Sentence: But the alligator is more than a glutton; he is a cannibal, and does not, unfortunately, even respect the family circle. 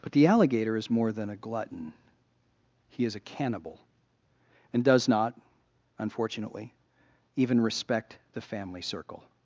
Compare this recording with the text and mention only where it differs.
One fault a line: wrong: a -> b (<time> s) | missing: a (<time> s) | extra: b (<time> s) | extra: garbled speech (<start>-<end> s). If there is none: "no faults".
no faults